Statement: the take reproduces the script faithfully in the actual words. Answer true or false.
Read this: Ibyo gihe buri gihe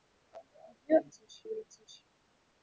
true